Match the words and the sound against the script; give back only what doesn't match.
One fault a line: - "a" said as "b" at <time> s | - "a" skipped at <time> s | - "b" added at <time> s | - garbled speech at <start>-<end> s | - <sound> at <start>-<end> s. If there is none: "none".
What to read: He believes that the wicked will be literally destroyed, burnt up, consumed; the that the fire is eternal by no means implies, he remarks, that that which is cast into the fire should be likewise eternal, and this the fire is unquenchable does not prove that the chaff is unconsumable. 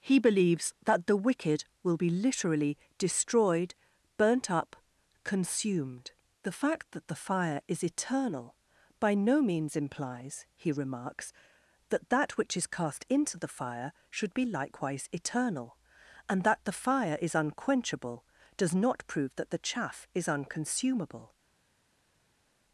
- "fact" added at 6.5 s
- "this" said as "that" at 16.4 s